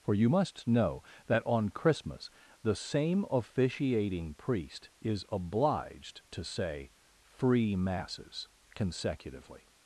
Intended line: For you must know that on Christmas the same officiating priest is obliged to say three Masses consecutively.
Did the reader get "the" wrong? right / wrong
right